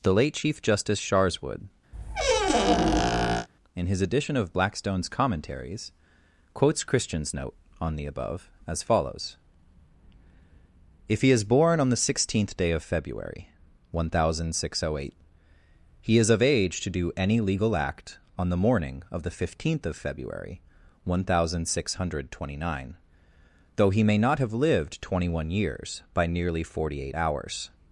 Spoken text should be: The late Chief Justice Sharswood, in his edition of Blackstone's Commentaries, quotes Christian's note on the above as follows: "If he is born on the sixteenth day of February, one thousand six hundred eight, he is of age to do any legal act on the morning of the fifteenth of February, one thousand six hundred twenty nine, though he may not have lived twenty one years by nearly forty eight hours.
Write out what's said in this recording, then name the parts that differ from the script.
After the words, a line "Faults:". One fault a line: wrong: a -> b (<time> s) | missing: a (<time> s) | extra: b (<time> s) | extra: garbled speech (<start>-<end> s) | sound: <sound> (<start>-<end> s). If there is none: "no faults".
The late Chief Justice Sharswood, in his edition of Blackstone's Commentaries, quotes Christian's note on the above as follows: "If he is born on the sixteenth day of February, one thousand six hundred eight, he is of age to do any legal act on the morning of the fifteenth of February, one thousand six hundred twenty nine, though he may not have lived twenty one years by nearly forty eight hours.
Faults:
sound: squeak (1.9-3.5 s)